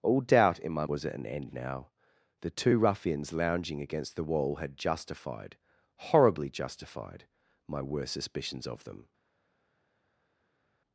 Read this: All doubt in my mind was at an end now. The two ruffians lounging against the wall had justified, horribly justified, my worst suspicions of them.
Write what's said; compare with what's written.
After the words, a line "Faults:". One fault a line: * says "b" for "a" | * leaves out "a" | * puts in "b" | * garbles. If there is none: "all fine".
All doubt in my was at an end now. The two ruffians lounging against the wall had justified, horribly justified, my worst suspicions of them.
Faults:
* leaves out "mind"